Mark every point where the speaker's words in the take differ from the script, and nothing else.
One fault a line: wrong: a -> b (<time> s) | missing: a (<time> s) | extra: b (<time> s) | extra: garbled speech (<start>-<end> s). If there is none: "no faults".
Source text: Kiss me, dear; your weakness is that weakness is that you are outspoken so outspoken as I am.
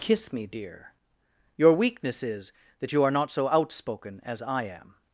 missing: weakness is that (2.9 s)
wrong: outspoken -> not (3.1 s)